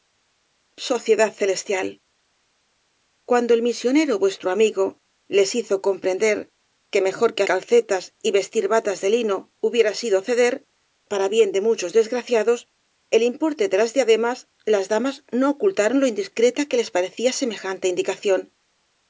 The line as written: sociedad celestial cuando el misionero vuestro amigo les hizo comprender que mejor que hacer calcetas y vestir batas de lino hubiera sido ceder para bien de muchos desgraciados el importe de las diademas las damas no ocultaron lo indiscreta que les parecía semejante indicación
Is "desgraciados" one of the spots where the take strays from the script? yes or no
no